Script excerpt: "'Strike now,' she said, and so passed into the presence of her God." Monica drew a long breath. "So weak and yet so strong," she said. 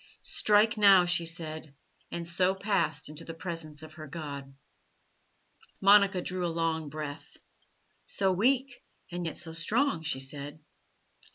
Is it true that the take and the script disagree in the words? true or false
false